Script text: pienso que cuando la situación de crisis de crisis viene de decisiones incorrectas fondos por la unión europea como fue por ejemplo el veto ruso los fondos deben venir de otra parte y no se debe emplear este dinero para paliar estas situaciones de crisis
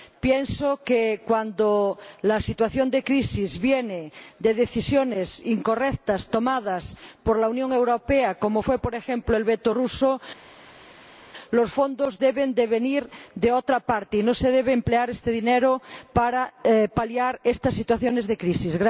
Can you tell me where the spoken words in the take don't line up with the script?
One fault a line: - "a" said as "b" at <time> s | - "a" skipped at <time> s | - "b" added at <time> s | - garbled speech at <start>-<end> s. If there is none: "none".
- "de crisis" skipped at 3.6 s
- "fondos" said as "tomadas" at 6.3 s